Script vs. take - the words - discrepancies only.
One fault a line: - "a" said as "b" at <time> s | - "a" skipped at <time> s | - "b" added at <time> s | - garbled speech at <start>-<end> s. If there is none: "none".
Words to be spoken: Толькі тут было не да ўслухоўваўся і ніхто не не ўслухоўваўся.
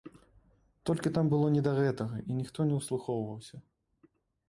- "тут" said as "там" at 1.2 s
- "ўслухоўваўся" said as "гэтага" at 1.8 s
- "не" skipped at 2.8 s